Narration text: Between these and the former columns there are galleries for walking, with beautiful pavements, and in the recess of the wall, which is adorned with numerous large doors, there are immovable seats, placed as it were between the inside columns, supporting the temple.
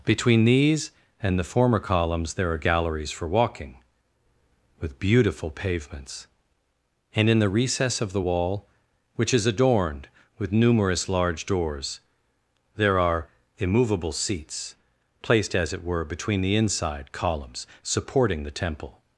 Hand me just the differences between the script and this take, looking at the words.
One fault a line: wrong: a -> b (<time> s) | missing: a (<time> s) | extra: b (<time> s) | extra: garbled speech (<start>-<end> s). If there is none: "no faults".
no faults